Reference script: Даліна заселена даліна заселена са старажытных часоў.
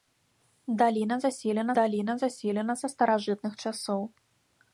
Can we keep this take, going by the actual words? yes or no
yes